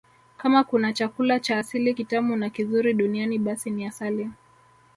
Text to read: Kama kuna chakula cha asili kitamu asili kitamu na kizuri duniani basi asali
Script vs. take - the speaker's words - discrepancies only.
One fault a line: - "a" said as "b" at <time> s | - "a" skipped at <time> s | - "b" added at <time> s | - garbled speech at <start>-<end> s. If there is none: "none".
- "asili kitamu" skipped at 2.4 s
- "ni" added at 3.7 s